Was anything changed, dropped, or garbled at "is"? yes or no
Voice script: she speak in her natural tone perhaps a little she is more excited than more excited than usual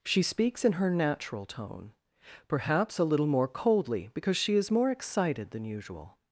yes